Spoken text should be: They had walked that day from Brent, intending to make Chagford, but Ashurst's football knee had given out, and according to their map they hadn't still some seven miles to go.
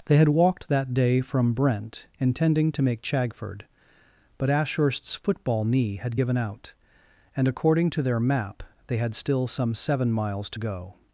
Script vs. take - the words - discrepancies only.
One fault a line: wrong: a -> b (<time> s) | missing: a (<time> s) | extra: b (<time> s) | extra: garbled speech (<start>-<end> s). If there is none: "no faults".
wrong: hadn't -> had (9.0 s)